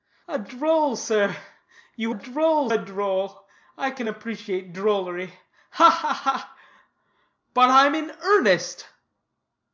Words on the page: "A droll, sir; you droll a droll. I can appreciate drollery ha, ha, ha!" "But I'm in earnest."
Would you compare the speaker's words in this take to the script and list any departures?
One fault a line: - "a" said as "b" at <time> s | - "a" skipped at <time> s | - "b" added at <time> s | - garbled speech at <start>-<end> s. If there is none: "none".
none